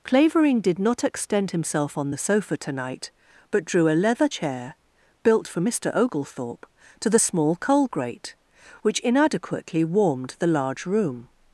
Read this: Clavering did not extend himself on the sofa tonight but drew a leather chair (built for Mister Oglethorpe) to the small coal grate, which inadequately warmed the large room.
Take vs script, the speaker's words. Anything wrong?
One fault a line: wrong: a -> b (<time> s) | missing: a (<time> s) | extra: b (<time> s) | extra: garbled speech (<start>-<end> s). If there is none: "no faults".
no faults